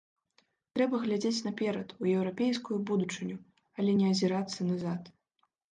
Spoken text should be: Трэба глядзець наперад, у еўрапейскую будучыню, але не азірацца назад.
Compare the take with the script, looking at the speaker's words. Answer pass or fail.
pass